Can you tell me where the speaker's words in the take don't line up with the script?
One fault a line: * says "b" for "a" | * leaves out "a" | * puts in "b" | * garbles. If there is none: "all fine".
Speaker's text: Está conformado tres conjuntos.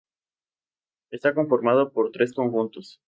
* puts in "por"